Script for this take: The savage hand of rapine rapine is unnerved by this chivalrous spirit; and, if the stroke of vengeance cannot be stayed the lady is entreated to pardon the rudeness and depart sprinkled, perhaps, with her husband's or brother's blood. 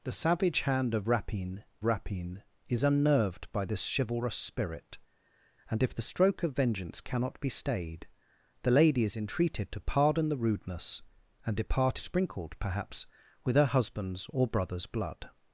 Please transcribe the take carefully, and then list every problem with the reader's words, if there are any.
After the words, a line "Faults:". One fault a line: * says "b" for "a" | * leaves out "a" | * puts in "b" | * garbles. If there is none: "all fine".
The savage hand of rapine rapine is unnerved by this chivalrous spirit; and, if the stroke of vengeance cannot be stayed the lady is entreated to pardon the rudeness and depart sprinkled, perhaps, with her husband's or brother's blood.
Faults:
all fine